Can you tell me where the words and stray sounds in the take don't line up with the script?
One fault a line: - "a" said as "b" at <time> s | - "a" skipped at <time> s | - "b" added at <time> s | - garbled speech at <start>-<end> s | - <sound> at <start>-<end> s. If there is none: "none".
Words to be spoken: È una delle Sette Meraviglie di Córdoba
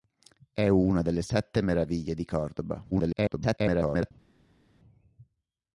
- garbled speech at 2.9-4.1 s